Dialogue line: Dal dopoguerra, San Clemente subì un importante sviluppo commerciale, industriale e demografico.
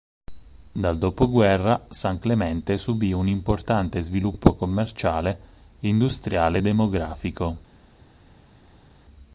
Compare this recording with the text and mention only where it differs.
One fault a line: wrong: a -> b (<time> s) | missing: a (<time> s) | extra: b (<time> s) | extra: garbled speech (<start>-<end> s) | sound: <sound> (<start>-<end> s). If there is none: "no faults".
no faults